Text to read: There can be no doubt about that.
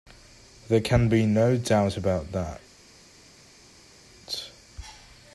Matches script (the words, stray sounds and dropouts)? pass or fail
pass